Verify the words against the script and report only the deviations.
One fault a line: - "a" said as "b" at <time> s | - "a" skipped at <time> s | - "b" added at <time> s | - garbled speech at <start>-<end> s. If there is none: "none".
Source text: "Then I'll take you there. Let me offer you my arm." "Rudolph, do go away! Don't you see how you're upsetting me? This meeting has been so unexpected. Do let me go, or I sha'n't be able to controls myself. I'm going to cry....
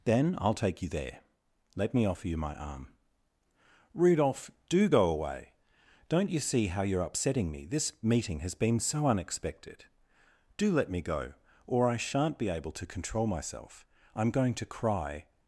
- "controls" said as "control" at 12.8 s